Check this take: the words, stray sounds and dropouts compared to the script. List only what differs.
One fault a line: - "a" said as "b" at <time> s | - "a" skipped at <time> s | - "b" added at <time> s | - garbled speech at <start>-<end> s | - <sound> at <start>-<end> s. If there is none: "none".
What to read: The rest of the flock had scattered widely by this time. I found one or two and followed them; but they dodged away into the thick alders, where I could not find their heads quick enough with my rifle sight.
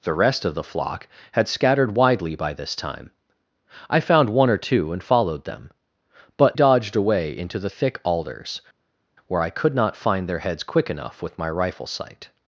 - "they" skipped at 6.6 s